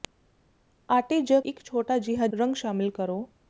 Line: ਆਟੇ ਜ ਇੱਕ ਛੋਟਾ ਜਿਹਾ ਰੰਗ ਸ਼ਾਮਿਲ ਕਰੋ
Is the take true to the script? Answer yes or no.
yes